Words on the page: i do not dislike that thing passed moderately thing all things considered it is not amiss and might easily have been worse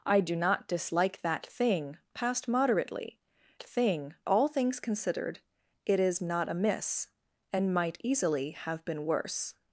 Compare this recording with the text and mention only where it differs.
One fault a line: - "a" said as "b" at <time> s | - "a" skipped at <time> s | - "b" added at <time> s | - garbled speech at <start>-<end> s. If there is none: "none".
none